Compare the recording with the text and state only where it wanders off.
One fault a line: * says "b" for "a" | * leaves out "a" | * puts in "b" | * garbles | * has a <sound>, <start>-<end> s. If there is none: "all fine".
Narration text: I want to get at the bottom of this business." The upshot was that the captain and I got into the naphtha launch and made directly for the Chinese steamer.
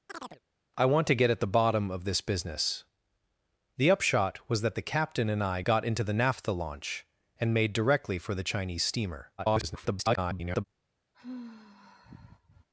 * has a chirp, 0.1-0.4 s
* garbles
* has a sigh, 11.1-12.7 s